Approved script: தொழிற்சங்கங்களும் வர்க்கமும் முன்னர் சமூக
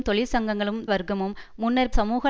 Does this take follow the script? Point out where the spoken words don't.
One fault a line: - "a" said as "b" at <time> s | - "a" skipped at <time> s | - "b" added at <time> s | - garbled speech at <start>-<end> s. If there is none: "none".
none